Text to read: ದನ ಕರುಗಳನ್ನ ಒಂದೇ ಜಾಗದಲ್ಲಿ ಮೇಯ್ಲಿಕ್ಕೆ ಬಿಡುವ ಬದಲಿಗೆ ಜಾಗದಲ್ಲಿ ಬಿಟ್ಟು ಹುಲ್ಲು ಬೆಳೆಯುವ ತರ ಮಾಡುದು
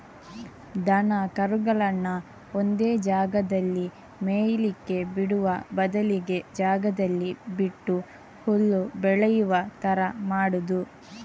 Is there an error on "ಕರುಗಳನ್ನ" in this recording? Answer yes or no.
no